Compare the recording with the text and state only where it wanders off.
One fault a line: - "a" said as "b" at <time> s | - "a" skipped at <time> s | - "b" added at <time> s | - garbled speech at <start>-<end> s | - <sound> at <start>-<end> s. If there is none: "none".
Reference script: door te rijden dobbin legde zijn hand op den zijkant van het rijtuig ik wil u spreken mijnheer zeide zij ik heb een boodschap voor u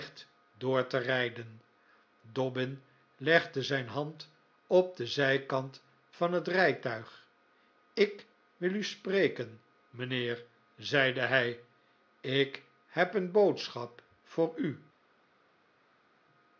- "zij" said as "hij" at 11.2 s